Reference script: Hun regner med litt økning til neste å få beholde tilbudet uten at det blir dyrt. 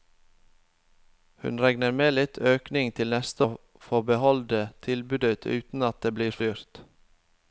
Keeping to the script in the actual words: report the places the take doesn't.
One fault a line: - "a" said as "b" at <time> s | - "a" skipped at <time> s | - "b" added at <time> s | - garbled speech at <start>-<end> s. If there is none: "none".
none